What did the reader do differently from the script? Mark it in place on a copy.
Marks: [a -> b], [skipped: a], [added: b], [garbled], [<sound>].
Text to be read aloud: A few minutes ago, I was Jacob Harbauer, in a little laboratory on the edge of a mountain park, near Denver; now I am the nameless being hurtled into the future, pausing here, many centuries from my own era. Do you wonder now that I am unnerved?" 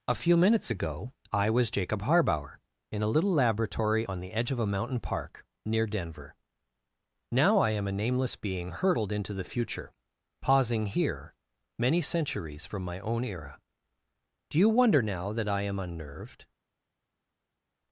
A few minutes ago, I was Jacob Harbauer, in a little laboratory on the edge of a mountain park, near Denver; now I am [the -> a] nameless being hurtled into the future, pausing here, many centuries from my own era. Do you wonder now that I am unnerved?"